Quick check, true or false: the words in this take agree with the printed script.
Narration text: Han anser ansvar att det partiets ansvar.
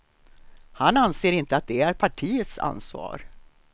false